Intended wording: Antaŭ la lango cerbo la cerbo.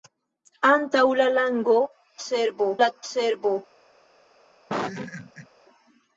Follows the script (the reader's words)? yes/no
yes